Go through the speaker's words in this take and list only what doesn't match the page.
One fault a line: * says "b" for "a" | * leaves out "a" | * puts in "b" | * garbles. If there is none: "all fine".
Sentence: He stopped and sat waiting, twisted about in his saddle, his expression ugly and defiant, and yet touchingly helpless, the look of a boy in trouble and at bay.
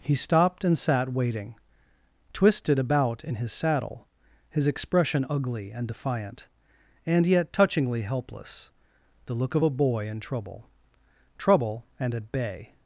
* puts in "trouble"